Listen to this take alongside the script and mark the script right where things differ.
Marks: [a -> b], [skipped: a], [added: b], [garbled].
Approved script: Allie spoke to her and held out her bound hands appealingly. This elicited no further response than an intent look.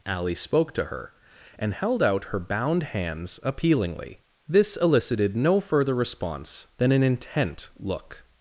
Allie spoke to her and held out her bound hands appealingly. This elicited no further response than an intent look.